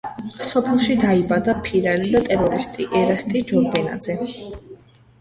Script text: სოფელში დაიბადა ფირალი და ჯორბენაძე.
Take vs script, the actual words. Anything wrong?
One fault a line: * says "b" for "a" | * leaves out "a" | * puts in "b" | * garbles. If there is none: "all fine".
* puts in "ტერორისტი ერასტი"